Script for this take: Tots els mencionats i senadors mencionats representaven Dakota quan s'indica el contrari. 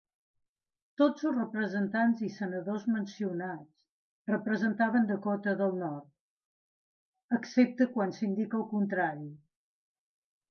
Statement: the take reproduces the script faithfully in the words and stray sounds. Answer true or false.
false